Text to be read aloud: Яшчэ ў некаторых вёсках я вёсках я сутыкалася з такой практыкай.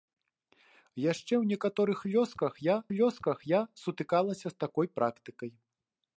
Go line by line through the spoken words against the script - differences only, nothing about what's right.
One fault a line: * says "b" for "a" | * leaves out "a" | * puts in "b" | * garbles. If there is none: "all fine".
all fine